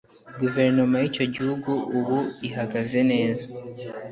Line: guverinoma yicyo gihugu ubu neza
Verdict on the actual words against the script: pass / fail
fail